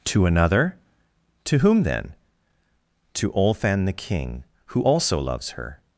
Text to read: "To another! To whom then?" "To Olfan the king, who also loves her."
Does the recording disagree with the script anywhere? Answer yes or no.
no